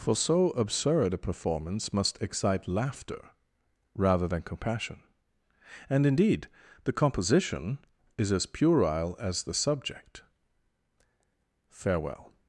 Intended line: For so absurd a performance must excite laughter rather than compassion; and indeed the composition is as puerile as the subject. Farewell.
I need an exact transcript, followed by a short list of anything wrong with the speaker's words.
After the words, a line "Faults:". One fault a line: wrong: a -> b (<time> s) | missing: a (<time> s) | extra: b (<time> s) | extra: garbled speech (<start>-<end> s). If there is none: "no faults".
For so absurd a performance must excite laughter rather than compassion; and indeed the composition is as puerile as the subject. Farewell.
Faults:
no faults